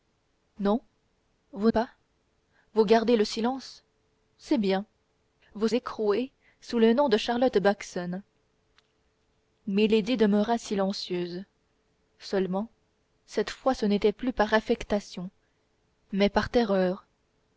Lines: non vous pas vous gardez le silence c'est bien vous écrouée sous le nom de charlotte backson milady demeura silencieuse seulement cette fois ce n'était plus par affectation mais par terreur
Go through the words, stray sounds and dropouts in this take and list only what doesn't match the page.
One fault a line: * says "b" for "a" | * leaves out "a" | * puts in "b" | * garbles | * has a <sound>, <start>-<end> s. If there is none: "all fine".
all fine